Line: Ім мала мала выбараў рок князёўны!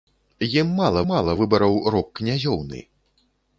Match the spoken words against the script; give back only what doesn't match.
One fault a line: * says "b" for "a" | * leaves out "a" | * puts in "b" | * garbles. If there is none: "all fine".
all fine